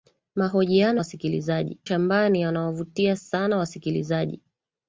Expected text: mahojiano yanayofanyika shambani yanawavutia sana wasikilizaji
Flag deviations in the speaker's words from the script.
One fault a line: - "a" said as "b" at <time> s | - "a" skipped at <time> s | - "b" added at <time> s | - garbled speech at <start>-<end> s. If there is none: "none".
- "yanayofanyika" said as "wasikilizaji" at 1.0 s